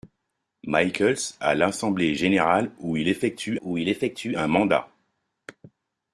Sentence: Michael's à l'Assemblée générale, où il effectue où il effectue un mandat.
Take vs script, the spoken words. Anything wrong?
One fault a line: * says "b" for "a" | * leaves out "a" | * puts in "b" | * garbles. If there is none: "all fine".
all fine